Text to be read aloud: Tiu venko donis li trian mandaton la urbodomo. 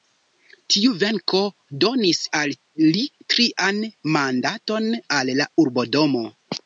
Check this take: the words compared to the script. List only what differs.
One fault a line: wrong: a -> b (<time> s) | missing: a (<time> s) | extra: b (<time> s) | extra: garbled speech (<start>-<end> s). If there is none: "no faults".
extra: al (2.4 s)
extra: al (5.2 s)